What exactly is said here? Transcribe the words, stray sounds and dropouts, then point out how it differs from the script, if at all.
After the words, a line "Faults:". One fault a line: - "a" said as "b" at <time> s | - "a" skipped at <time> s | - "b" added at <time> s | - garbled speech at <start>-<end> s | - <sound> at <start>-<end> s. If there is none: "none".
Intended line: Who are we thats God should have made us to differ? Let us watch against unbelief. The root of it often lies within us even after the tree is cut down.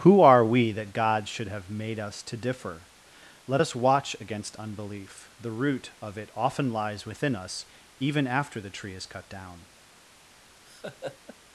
Who are we that God should have made us to differ? Let us watch against unbelief. The root of it often lies within us even after the tree is cut down.
Faults:
- "thats" said as "that" at 0.7 s
- laugh at 10.6-11.4 s